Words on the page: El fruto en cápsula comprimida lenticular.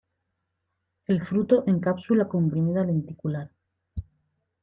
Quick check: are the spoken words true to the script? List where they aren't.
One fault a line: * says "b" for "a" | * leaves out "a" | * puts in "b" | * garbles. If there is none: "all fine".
all fine